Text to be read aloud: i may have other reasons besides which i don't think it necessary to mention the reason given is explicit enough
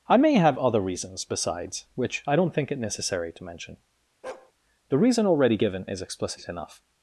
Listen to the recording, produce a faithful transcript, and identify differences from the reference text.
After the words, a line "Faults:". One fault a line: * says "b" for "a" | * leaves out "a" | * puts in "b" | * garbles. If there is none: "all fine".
i may have other reasons besides which i don't think it necessary to mention the reason already given is explicit enough
Faults:
* puts in "already"